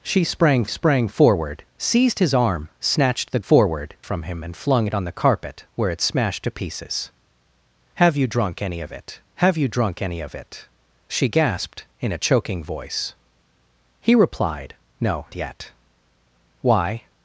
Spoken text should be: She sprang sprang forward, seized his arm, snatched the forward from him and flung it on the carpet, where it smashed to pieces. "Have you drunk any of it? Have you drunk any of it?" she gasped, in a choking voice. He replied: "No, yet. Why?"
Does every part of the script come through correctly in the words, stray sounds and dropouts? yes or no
yes